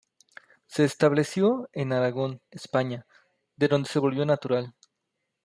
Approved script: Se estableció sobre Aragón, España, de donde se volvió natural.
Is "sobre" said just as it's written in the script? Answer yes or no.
no